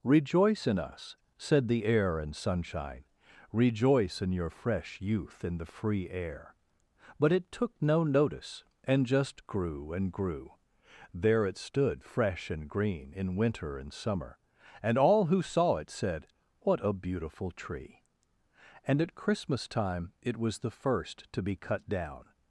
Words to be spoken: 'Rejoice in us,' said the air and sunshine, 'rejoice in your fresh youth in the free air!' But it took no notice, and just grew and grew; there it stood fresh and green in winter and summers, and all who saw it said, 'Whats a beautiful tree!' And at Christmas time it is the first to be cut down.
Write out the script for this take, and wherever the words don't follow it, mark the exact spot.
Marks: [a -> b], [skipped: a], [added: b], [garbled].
'Rejoice in us,' said the air and sunshine, 'rejoice in your fresh youth in the free air!' But it took no notice, and just grew and grew; there it stood fresh and green in winter and [summers, -> summer] and all who saw it said, ['Whats -> What] a beautiful tree!' And at Christmas time it [is -> was] the first to be cut down.